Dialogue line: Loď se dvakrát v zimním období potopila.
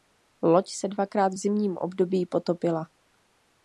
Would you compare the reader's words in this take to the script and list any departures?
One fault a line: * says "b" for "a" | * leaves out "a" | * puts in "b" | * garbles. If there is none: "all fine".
all fine